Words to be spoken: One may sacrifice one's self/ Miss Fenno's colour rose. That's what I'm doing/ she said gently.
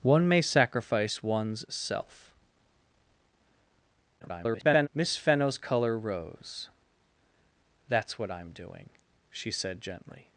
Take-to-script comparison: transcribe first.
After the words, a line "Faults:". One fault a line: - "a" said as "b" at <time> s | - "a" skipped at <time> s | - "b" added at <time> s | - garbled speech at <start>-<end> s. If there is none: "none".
One may sacrifice one's self/ [garbled] Miss Fenno's colour rose. That's what I'm doing/ she said gently.
Faults:
- garbled speech at 4.2-4.9 s